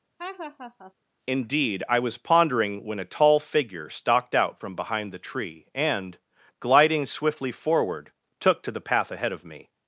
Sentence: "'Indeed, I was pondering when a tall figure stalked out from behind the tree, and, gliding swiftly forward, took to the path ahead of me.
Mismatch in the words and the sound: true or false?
true